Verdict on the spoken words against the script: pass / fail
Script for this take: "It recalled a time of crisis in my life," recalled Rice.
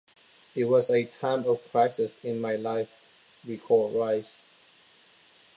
fail